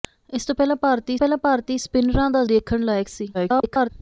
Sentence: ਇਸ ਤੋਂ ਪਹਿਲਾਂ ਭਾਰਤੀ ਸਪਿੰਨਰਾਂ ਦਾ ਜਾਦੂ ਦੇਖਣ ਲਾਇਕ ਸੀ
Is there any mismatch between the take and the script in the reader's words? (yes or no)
yes